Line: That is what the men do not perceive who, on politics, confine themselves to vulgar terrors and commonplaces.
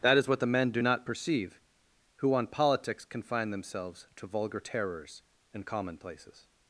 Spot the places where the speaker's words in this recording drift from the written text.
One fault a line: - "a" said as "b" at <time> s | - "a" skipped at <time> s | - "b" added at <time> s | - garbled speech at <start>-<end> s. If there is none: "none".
none